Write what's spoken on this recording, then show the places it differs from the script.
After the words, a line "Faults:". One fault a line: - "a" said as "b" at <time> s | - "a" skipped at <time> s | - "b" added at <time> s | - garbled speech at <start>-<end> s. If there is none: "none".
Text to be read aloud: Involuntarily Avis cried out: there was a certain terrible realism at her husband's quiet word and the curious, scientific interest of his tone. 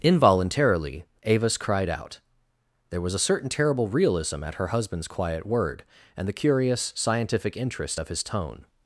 Involuntarily Avis cried out: there was a certain terrible realism at her husband's quiet word and the curious, scientific interest of his tone.
Faults:
none